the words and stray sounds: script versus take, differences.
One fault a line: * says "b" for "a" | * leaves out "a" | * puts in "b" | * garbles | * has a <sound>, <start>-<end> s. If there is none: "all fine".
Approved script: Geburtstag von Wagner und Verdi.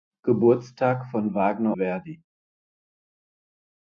* leaves out "und"